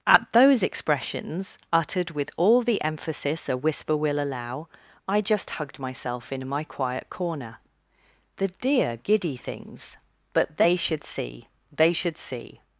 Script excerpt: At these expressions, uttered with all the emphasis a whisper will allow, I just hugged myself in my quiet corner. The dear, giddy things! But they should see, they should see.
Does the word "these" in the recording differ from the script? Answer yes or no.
yes